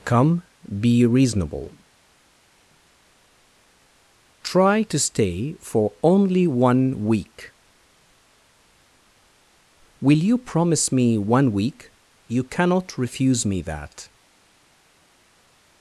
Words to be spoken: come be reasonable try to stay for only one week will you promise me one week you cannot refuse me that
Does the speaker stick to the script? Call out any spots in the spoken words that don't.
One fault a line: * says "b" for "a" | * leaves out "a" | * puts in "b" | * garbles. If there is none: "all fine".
all fine